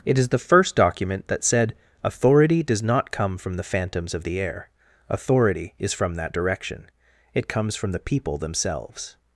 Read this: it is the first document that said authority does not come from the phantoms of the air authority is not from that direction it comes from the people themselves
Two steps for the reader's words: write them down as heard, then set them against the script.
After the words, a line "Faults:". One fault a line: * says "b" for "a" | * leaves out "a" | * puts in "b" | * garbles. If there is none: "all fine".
it is the first document that said authority does not come from the phantoms of the air authority is from that direction it comes from the people themselves
Faults:
* leaves out "not"